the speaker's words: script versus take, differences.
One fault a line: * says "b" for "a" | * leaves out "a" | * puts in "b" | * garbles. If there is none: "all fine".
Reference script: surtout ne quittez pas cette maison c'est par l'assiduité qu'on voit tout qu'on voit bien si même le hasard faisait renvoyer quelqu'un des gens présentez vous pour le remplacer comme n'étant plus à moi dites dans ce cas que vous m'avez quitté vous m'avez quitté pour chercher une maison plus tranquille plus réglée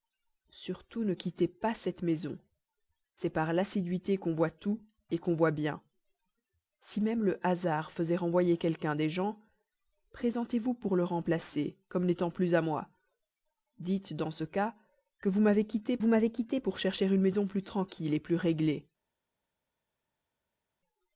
all fine